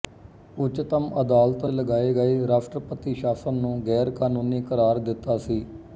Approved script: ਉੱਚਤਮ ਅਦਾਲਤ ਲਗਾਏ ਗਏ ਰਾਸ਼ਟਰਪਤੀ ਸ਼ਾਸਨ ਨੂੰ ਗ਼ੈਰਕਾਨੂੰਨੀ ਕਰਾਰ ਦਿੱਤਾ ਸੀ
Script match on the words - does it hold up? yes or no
yes